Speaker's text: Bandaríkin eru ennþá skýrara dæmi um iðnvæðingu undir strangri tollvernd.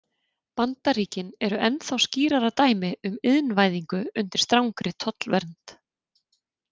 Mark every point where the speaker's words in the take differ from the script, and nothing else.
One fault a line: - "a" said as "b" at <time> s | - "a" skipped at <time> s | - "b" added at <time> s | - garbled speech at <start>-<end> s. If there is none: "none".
none